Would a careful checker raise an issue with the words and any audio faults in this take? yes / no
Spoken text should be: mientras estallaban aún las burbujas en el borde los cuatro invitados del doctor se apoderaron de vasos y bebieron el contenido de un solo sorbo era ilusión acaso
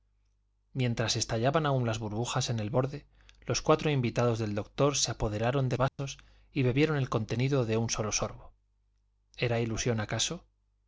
yes